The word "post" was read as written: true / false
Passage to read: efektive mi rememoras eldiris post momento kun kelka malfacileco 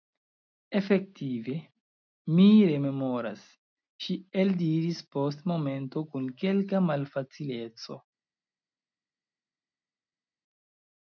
true